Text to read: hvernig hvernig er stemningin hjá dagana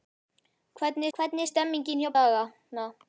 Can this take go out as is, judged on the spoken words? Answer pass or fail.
pass